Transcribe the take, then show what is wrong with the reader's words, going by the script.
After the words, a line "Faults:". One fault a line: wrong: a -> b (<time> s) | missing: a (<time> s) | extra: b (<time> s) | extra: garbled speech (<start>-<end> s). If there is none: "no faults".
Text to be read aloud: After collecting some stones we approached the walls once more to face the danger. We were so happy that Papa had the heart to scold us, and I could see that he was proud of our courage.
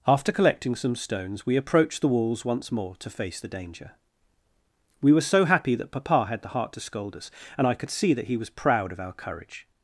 After collecting some stones we approached the walls once more to face the danger. We were so happy that Papa had the heart to scold us, and I could see that he was proud of our courage.
Faults:
no faults